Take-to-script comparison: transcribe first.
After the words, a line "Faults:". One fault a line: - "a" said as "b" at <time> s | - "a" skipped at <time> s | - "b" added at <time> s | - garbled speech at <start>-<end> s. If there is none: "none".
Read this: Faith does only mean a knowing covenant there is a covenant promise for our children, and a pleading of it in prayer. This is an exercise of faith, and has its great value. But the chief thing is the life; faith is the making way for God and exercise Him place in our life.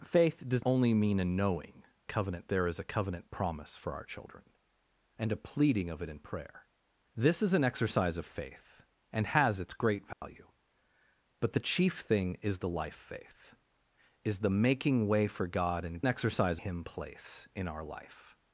Faith does only mean a knowing covenant there is a covenant promise for our children, and a pleading of it in prayer. This is an exercise of faith, and has its great value. But the chief thing is the life; faith is the making way for God and exercise Him place in our life.
Faults:
none